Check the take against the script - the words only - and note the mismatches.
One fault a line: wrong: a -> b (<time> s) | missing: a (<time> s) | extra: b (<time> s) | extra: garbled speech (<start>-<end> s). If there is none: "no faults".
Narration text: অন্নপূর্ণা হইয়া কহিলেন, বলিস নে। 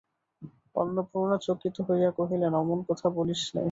extra: চকিত (1.4 s)
extra: অমন কথা (2.5 s)